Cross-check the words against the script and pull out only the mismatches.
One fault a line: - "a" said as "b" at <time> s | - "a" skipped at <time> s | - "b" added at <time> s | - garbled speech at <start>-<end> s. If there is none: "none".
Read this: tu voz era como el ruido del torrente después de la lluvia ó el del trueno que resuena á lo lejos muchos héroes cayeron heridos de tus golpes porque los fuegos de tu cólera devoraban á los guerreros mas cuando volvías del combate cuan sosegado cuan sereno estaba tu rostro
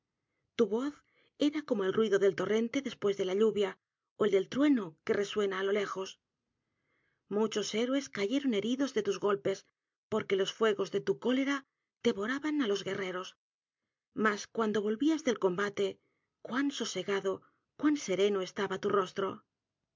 none